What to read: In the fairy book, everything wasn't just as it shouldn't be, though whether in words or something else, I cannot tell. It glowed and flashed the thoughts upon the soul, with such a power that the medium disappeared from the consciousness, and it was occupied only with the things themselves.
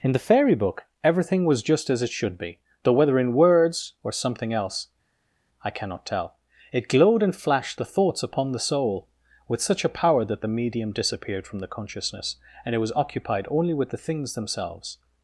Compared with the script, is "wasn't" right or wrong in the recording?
wrong